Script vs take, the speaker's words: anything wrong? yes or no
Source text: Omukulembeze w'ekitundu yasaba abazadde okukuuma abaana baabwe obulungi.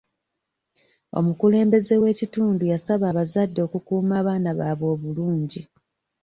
no